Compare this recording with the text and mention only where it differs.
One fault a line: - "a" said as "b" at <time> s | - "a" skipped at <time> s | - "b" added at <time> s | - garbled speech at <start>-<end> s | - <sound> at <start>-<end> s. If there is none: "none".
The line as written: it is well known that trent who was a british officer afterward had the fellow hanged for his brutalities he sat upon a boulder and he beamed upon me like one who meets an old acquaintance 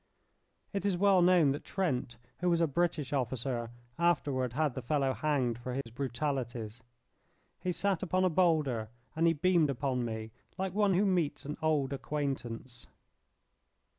- dropout at 5.8-5.9 s